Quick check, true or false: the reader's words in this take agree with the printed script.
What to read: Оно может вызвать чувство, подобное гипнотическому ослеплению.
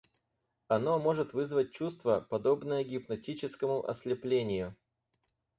true